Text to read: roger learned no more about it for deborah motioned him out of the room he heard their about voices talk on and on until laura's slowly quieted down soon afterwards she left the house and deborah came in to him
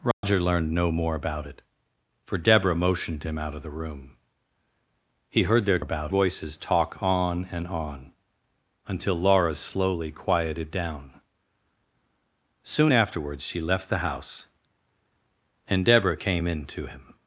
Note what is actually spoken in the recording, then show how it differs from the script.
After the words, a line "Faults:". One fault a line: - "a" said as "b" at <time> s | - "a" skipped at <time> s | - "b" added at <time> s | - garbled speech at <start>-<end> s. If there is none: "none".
roger learned no more about it for deborah motioned him out of the room he heard their about voices talk on and on until laura's slowly quieted down soon afterwards she left the house and deborah came in to him
Faults:
none